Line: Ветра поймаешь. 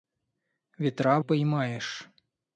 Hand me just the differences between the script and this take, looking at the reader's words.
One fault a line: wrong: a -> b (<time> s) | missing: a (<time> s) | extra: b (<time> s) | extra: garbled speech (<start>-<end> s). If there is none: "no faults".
no faults